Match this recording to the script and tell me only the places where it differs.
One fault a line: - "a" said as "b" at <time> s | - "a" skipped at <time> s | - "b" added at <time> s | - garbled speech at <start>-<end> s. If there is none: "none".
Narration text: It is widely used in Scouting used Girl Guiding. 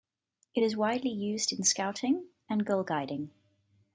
- "used" said as "and" at 2.5 s